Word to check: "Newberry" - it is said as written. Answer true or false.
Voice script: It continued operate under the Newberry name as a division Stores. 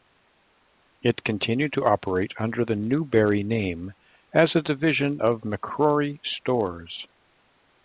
true